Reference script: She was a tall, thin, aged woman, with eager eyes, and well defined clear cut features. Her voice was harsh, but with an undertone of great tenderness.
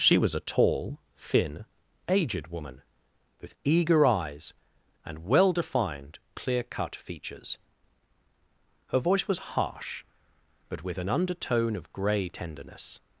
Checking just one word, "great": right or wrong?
wrong